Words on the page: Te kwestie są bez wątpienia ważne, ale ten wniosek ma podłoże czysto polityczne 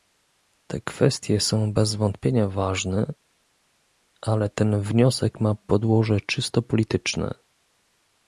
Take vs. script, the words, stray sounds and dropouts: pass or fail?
pass